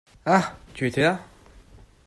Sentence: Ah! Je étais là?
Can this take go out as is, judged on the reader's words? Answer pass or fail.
fail